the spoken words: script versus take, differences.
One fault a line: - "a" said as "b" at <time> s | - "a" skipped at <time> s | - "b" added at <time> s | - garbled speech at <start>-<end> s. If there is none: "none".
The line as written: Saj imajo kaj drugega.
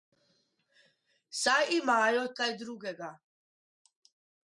none